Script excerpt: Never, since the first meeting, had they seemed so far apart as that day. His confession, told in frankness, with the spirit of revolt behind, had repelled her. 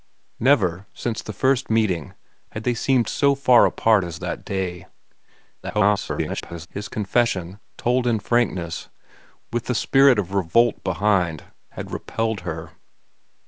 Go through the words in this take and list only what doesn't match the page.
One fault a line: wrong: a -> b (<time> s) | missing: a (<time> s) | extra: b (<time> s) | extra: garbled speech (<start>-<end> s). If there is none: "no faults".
extra: garbled speech (5.6-6.7 s)